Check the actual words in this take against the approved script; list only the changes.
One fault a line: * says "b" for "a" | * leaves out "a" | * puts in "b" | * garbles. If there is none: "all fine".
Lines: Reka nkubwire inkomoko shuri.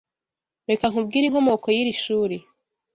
* puts in "y'iri"